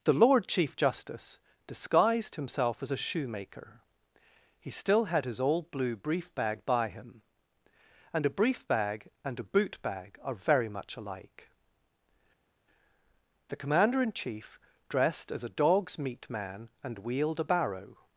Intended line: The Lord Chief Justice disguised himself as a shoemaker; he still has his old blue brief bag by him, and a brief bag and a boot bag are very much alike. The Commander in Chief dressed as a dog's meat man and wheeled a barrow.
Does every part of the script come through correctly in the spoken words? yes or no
no